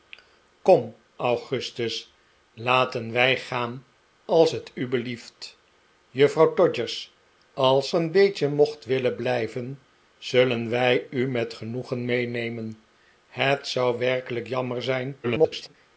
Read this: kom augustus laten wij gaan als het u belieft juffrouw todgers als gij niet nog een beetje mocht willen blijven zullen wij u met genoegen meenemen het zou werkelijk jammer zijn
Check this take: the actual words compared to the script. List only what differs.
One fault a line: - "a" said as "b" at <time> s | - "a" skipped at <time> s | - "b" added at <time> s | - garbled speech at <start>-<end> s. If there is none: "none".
- "gij niet nog" skipped at 7.9 s
- garbled speech at 15.2-15.7 s